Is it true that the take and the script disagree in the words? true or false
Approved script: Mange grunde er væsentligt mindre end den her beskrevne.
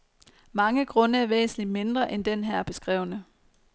false